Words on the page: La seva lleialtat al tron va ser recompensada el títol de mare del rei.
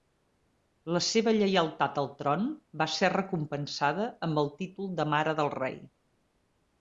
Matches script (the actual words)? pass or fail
fail